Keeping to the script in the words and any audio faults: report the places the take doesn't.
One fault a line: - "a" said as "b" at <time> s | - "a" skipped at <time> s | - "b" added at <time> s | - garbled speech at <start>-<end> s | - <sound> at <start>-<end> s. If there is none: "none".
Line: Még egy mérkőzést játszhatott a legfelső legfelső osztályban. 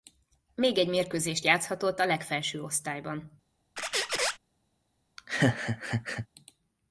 - "legfelső" skipped at 2.6 s
- squeak at 3.8-4.4 s
- laugh at 5.2-6.3 s